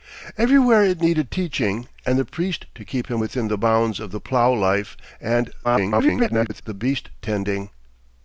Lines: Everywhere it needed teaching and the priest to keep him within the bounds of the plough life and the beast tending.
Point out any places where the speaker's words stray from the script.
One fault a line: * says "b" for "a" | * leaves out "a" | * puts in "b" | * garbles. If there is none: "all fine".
* garbles